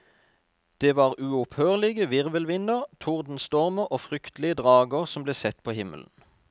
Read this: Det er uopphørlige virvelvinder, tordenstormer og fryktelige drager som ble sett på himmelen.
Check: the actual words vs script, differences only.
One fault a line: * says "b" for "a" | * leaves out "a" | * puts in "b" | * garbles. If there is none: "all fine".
* says "var" for "er"